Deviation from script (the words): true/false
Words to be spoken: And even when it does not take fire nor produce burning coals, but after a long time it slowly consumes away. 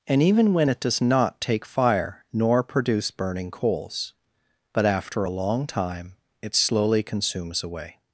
false